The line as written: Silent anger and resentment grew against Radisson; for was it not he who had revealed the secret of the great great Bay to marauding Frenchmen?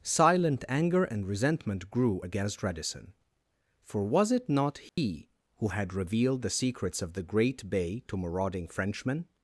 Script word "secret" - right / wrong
wrong